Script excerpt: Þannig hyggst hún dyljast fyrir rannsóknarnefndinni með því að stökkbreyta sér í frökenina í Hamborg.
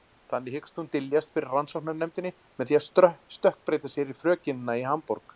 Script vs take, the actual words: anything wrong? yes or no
no